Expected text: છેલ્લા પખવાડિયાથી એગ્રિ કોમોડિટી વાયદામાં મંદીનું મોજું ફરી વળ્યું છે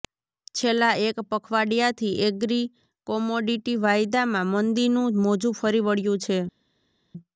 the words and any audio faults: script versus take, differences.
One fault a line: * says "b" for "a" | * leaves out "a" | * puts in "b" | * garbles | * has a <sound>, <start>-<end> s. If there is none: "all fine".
* puts in "એક"